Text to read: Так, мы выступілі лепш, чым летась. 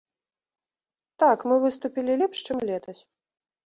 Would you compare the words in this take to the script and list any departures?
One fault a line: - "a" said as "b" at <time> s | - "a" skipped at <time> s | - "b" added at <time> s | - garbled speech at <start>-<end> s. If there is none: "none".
none